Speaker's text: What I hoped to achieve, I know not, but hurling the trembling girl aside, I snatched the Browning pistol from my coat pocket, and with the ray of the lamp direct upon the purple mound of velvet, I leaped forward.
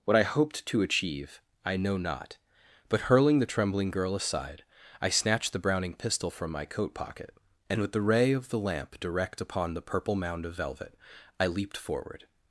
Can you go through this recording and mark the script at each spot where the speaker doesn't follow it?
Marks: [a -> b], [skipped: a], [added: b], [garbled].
What I hoped to achieve, I know not, but hurling the trembling girl aside, I snatched the Browning pistol from my coat pocket, and with the ray of the lamp direct upon the purple mound of velvet, I leaped forward.